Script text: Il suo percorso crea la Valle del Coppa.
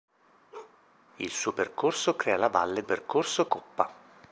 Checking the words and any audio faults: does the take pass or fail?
fail